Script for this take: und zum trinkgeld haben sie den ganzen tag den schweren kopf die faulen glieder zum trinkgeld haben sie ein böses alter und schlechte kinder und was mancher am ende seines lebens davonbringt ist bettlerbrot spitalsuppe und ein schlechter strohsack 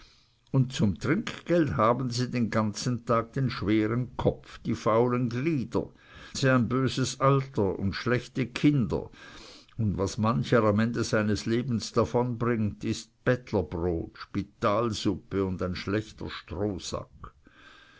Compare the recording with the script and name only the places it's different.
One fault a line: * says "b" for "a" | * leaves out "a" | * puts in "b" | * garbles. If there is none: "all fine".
* leaves out "zum trinkgeld haben"